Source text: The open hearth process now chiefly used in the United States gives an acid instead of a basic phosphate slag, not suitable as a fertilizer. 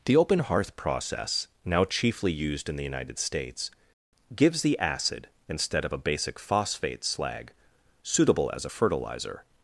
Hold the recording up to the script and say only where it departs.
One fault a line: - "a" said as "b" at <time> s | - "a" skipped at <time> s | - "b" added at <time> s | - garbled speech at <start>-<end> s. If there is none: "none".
- "an" said as "the" at 4.6 s
- "not" skipped at 7.5 s